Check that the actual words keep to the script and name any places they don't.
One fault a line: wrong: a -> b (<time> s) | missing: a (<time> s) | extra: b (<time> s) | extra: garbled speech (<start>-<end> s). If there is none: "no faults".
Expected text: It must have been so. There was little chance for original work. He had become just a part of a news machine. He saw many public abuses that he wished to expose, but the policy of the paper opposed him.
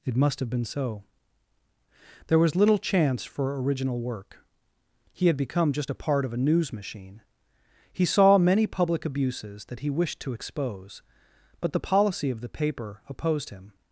no faults